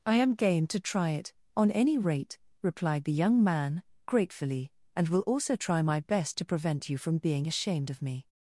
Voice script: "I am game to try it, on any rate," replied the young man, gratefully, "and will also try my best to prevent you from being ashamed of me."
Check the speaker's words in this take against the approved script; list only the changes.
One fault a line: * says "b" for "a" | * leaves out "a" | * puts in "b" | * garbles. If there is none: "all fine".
all fine